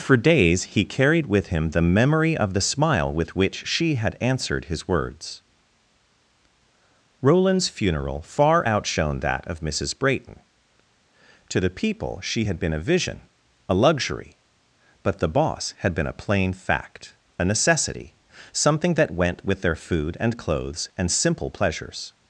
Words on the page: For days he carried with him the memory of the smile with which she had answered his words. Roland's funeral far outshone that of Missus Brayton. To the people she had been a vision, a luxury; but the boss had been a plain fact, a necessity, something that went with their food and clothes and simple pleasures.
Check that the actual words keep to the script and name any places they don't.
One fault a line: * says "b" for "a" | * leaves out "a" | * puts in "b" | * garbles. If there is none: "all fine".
all fine